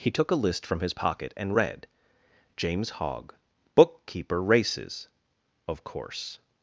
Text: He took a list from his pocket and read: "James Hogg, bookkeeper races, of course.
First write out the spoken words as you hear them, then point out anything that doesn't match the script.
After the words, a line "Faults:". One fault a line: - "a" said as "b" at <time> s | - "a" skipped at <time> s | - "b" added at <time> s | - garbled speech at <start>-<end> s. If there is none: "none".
He took a list from his pocket and read: "James Hogg, bookkeeper races, of course.
Faults:
none